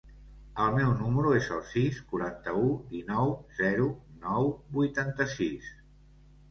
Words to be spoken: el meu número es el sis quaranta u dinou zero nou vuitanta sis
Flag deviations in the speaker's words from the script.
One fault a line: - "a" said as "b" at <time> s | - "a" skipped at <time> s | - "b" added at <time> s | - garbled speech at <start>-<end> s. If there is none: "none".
none